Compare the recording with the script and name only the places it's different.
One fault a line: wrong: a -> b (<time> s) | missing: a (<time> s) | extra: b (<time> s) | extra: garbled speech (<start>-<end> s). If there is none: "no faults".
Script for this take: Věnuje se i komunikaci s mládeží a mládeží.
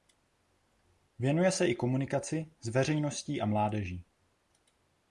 wrong: mládeží -> veřejností (2.7 s)